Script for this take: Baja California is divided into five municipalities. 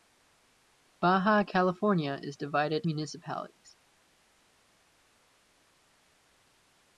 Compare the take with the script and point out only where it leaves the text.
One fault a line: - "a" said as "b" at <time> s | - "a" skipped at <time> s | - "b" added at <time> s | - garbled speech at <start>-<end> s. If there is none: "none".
- "into five" skipped at 2.9 s